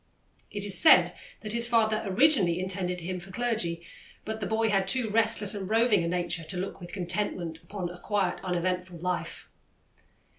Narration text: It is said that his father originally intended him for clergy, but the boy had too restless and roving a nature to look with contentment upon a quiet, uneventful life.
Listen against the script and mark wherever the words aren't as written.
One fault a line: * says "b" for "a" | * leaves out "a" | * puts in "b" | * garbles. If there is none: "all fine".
all fine